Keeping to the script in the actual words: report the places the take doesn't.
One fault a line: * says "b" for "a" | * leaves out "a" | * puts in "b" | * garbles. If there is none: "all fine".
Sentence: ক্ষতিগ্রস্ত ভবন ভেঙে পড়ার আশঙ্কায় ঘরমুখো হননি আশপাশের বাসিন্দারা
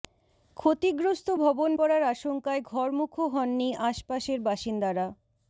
* leaves out "ভেঙে"